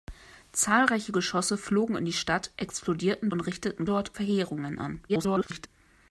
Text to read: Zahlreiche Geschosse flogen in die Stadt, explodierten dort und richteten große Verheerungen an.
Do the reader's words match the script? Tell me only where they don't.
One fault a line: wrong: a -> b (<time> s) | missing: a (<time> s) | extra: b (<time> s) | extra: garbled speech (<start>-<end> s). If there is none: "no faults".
missing: dort (3.3 s)
wrong: große -> dort (3.8 s)
extra: garbled speech (5.1-5.7 s)